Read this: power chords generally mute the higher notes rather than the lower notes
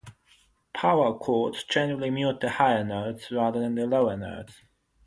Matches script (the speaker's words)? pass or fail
pass